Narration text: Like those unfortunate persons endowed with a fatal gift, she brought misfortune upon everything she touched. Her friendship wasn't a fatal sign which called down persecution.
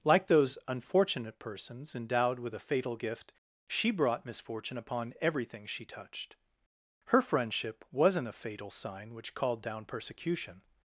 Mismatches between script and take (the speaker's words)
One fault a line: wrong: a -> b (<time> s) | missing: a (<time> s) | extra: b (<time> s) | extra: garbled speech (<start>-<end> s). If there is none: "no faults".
no faults